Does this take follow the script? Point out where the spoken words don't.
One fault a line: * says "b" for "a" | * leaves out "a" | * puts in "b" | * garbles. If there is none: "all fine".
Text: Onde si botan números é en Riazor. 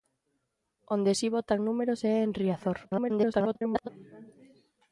* garbles